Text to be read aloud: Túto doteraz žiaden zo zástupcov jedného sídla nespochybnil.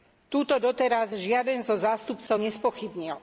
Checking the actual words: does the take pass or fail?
fail